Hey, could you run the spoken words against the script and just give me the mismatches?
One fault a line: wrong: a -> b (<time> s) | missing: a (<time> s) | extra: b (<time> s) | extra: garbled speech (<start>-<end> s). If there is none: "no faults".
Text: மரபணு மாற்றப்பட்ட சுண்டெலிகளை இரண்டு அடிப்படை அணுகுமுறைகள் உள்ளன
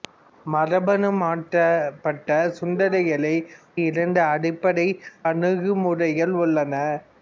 no faults